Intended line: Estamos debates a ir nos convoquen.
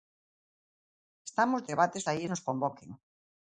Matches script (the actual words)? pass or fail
pass